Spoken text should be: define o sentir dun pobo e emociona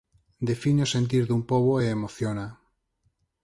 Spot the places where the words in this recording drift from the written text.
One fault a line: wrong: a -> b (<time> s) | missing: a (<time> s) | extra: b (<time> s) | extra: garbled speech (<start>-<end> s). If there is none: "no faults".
no faults